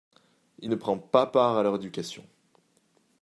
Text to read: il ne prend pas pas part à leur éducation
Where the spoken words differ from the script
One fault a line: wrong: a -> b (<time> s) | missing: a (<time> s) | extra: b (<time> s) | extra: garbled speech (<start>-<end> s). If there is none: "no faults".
missing: pas (1.3 s)